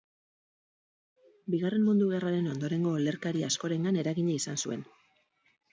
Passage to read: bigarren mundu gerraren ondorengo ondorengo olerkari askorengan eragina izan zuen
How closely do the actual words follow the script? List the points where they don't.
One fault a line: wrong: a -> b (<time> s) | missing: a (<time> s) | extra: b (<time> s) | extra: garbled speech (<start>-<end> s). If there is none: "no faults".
missing: ondorengo (3.0 s)